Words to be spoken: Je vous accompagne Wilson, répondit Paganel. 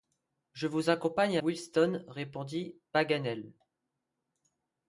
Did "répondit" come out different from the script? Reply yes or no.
no